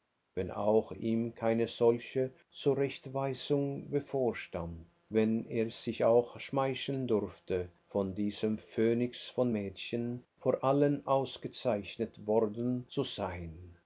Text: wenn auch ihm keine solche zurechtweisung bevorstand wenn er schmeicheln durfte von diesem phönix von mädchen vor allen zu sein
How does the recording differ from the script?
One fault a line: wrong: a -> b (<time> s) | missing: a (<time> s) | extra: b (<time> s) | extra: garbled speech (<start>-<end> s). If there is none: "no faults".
extra: sich auch (5.7 s)
extra: ausgezeichnet worden (11.1 s)